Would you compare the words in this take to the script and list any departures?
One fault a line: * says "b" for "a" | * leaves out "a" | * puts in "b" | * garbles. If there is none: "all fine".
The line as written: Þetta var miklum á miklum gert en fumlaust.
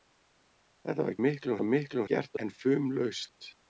all fine